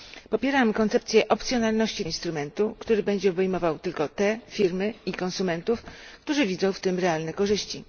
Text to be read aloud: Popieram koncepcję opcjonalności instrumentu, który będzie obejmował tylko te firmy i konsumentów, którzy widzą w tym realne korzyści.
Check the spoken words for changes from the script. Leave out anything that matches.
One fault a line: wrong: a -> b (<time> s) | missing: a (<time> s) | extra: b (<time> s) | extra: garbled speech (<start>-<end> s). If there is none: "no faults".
no faults